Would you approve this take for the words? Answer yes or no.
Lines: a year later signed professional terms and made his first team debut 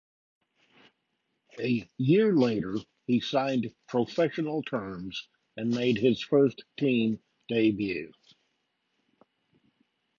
no